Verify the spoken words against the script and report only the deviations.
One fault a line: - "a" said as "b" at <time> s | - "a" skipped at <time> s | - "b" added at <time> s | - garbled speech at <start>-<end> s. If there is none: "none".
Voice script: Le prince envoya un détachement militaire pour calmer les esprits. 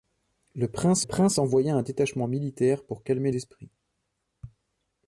- "prince" added at 1.0 s
- "les" skipped at 3.3 s